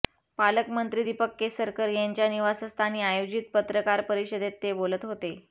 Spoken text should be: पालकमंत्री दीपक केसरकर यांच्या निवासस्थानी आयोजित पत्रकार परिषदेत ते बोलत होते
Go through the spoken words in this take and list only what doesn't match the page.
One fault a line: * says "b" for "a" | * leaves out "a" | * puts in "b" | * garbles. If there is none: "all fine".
all fine